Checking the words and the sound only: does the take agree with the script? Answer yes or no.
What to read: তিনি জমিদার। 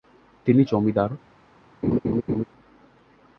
no